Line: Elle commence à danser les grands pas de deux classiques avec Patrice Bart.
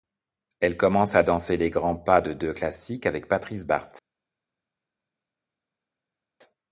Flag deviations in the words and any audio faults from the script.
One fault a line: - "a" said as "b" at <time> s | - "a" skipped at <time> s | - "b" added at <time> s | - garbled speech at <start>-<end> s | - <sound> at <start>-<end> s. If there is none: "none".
none